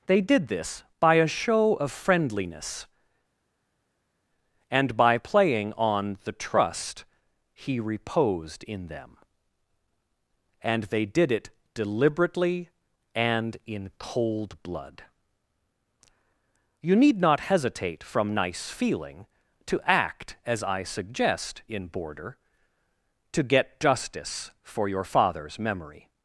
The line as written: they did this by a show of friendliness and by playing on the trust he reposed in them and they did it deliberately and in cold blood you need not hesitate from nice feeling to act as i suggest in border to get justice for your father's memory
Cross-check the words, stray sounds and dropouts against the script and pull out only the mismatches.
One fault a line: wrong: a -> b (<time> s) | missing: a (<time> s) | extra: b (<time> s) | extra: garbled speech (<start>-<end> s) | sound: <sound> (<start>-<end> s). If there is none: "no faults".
no faults